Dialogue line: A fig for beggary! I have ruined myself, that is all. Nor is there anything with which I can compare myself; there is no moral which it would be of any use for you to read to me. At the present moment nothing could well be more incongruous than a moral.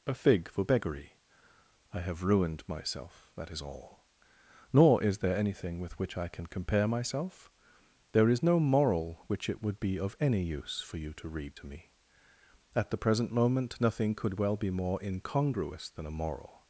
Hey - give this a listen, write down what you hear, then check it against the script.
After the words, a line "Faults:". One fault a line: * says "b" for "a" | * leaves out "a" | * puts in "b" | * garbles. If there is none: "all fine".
A fig for beggary! I have ruined myself, that is all. Nor is there anything with which I can compare myself; there is no moral which it would be of any use for you to read to me. At the present moment nothing could well be more incongruous than a moral.
Faults:
all fine